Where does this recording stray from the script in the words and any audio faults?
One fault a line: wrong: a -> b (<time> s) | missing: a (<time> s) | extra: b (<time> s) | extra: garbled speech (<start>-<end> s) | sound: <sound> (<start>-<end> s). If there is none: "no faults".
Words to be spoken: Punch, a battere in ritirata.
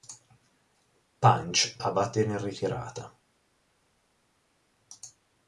no faults